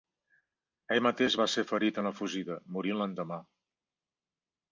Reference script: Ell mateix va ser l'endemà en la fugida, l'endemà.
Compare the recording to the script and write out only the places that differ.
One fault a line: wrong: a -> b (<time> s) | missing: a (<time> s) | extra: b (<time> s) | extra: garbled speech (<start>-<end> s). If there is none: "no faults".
wrong: l'endemà -> ferit (1.7 s)
extra: morint (2.8 s)